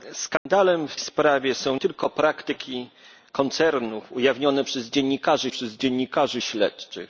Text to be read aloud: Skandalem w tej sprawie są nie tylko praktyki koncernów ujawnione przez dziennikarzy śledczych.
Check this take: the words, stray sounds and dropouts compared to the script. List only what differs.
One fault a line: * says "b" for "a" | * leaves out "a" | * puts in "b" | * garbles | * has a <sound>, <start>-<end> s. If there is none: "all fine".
* has a dropout, 0.4-0.5 s
* leaves out "tej"
* leaves out "nie"
* puts in "przez dziennikarzy"